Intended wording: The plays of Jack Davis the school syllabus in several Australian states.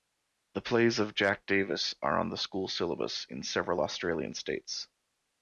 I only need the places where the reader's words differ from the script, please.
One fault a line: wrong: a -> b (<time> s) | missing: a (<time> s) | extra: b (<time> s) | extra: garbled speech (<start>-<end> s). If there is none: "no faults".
extra: are on (2.0 s)